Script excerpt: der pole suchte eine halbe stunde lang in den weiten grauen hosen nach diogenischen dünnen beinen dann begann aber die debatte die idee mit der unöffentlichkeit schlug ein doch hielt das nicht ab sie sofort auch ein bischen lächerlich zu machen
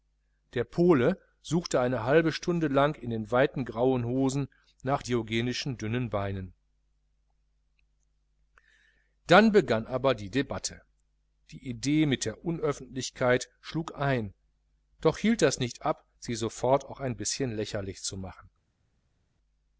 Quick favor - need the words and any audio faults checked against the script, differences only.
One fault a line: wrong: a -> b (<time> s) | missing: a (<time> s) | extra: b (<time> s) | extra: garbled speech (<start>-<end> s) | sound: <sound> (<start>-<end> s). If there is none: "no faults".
no faults